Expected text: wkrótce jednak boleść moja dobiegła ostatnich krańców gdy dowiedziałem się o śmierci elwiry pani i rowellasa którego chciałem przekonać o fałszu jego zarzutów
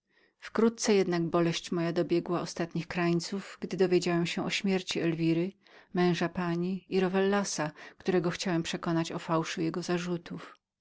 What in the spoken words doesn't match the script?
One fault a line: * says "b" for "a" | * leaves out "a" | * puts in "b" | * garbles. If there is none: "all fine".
* puts in "męża"